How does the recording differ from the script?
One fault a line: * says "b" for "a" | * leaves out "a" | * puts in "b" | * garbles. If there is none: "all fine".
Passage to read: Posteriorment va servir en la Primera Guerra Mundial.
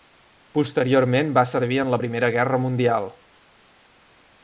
all fine